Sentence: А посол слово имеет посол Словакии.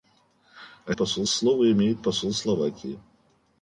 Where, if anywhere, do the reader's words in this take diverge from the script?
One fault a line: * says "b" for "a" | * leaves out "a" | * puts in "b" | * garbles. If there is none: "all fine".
all fine